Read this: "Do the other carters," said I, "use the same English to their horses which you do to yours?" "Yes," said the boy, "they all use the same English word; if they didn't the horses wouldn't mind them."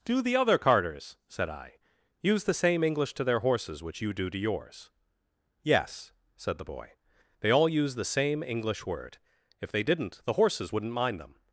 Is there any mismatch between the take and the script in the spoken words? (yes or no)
no